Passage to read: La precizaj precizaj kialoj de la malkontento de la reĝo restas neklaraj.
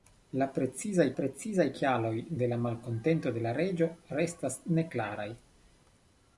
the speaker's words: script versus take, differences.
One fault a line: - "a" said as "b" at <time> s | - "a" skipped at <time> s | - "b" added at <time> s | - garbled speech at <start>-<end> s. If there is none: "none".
none